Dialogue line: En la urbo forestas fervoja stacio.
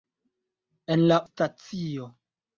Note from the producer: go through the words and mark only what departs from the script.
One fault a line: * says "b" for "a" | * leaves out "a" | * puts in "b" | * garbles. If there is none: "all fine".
* leaves out "urbo forestas fervoja"